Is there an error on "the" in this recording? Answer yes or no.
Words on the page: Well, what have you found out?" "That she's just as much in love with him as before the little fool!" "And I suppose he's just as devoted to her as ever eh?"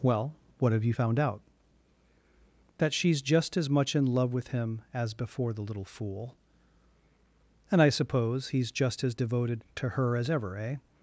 no